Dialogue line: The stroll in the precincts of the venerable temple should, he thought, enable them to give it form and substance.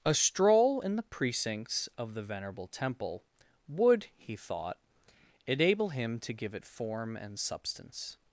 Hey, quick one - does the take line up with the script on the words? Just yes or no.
no